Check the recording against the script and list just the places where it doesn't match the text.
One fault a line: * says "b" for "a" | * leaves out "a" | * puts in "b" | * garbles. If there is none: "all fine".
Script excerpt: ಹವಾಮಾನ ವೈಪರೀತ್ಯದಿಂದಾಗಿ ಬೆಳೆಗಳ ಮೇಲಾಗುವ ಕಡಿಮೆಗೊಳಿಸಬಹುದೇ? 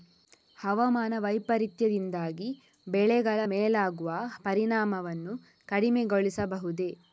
* puts in "ಪರಿಣಾಮವನ್ನು"